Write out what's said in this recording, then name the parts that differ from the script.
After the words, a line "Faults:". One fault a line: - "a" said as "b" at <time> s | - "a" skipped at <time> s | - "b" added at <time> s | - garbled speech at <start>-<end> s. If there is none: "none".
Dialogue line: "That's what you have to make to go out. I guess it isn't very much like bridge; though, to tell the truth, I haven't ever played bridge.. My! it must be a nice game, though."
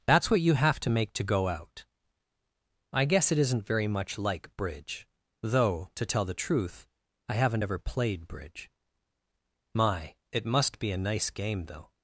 "That's what you have to make to go out. I guess it isn't very much like bridge; though, to tell the truth, I haven't ever played bridge.. My! it must be a nice game, though."
Faults:
none